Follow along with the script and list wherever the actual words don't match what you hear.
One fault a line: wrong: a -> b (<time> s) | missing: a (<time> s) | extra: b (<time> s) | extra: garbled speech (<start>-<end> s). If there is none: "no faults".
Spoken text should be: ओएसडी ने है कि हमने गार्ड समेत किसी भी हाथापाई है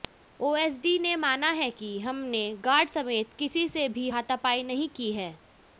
extra: माना (1.1 s)
extra: से (3.7 s)
extra: नहीं की (4.6 s)